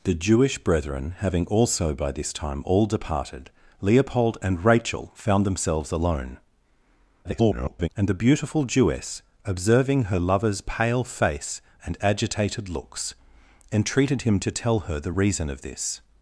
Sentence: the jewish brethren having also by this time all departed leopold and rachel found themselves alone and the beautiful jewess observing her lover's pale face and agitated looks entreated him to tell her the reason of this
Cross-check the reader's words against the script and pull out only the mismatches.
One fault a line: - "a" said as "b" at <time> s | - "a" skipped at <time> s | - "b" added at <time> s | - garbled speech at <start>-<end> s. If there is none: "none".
- garbled speech at 7.2-7.9 s